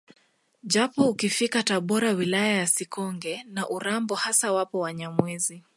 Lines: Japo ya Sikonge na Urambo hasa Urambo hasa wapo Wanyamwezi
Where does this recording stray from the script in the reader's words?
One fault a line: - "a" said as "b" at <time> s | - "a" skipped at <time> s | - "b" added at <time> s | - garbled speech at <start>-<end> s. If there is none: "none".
- "ukifika Tabora wilaya" added at 1.1 s
- "Urambo hasa" skipped at 4.5 s